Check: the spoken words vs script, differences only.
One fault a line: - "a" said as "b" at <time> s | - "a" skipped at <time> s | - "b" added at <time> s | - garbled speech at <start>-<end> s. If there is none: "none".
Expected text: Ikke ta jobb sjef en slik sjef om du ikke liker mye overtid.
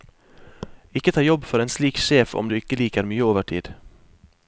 - "sjef" said as "for" at 1.5 s